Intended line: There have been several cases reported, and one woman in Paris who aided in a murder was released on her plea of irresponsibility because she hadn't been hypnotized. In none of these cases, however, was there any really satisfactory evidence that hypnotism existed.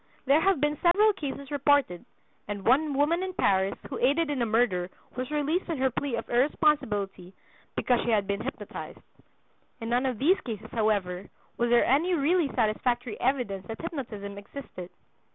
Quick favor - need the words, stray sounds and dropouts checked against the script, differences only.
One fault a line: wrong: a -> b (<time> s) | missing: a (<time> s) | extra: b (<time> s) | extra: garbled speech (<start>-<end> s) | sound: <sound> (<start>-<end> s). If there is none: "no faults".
sound: dropout (0.9-0.9 s)
wrong: hadn't -> had (8.1 s)